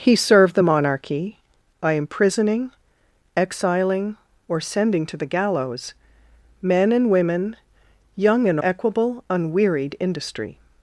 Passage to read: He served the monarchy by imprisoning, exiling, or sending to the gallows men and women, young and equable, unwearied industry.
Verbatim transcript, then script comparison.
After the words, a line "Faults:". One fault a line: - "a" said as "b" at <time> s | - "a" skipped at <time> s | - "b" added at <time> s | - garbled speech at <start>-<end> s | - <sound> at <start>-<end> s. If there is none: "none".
He served the monarchy by imprisoning, exiling, or sending to the gallows men and women, young and equable, unwearied industry.
Faults:
none